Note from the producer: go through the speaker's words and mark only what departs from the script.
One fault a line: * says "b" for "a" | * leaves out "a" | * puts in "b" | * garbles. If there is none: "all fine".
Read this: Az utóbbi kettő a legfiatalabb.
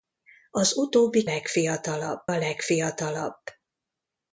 * says "legfiatalabb" for "kettő"